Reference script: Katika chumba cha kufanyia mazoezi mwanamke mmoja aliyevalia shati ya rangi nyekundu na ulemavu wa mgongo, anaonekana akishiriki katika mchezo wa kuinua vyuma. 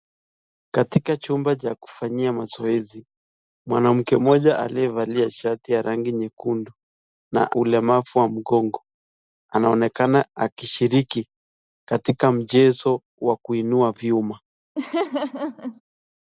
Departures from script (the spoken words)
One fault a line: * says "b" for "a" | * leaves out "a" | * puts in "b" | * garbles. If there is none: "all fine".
all fine